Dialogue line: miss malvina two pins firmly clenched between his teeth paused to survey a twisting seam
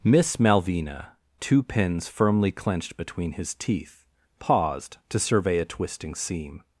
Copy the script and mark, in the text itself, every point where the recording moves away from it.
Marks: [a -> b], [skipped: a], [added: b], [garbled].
miss malvina two pins firmly clenched between his teeth paused to survey a twisting seam